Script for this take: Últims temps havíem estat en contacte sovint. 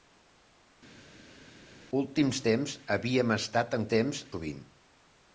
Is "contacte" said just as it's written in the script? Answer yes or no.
no